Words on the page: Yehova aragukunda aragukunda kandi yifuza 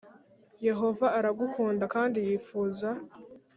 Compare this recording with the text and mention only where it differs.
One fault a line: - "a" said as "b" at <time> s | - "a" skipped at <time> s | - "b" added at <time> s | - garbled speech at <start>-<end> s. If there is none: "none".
- "aragukunda" skipped at 1.9 s